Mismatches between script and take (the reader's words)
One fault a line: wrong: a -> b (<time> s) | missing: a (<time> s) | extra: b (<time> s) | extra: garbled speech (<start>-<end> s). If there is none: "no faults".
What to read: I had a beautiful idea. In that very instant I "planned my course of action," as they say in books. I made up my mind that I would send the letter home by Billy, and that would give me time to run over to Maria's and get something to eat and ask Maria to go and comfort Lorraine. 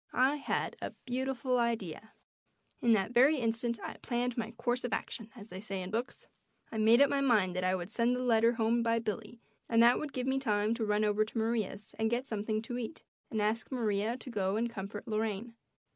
no faults